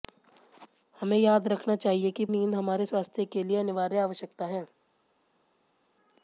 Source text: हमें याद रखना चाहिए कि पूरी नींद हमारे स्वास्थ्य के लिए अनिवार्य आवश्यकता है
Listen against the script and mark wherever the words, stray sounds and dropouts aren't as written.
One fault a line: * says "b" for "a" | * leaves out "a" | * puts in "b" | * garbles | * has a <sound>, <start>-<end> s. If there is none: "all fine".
* leaves out "पूरी"